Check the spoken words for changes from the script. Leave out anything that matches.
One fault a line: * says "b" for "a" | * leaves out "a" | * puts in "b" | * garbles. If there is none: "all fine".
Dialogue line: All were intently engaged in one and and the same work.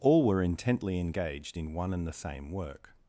* leaves out "and"